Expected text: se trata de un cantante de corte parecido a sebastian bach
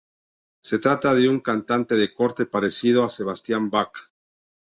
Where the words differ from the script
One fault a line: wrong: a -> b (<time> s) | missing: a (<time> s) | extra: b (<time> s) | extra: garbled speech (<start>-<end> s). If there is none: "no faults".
no faults